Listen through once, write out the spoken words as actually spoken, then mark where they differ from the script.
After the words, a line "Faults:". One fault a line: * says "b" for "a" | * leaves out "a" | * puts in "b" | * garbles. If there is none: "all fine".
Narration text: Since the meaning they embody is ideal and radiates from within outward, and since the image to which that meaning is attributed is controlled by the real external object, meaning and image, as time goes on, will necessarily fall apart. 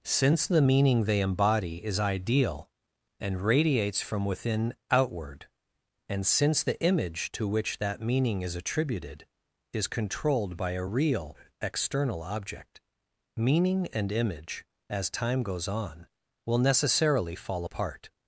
Since the meaning they embody is ideal and radiates from within outward, and since the image to which that meaning is attributed is controlled by a real external object, meaning and image, as time goes on, will necessarily fall apart.
Faults:
* says "a" for "the"